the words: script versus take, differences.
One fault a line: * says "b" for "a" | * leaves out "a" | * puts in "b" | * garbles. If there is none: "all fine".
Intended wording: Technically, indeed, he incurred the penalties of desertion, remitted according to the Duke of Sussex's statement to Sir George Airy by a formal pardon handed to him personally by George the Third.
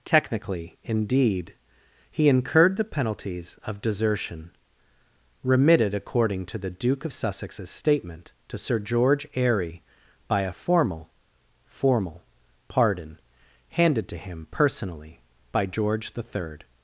* puts in "formal"